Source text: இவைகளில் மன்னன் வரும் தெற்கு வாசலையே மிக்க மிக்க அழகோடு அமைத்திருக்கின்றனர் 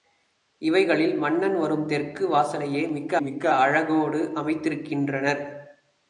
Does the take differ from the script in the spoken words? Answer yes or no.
no